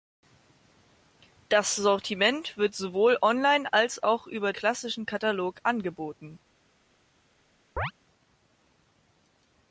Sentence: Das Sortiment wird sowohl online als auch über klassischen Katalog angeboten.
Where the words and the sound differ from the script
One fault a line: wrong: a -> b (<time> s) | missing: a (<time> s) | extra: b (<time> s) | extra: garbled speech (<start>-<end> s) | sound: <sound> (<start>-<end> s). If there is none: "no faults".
sound: chirp (7.8-7.9 s)